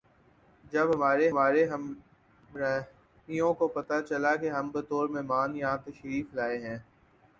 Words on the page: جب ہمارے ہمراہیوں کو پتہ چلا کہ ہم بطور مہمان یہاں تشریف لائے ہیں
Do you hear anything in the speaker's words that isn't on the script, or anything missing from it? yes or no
yes